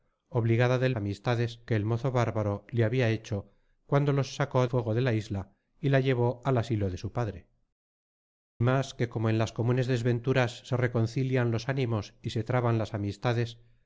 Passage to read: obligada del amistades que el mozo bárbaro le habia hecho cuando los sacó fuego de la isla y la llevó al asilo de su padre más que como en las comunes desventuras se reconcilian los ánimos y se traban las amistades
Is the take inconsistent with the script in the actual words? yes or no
no